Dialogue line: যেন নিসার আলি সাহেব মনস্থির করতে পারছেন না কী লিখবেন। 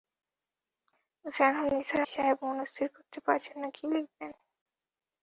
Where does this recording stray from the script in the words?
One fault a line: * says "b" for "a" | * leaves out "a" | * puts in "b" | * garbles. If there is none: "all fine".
* leaves out "আলি"